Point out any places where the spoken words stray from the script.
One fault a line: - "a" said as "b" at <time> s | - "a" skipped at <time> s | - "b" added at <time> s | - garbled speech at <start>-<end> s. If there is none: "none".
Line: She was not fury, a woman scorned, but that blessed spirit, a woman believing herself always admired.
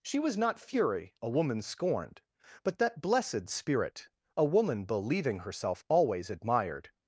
none